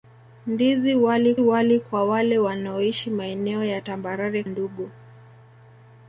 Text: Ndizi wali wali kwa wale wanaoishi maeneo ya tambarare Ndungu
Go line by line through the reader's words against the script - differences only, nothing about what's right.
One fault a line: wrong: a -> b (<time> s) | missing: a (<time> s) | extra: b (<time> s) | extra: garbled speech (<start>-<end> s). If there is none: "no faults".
no faults